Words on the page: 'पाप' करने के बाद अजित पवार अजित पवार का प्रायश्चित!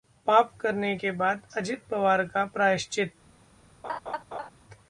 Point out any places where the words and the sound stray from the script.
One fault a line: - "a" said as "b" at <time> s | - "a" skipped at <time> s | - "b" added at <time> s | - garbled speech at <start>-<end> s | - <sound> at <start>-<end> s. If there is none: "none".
- "अजित पवार" skipped at 2.2 s
- laugh at 3.8-4.5 s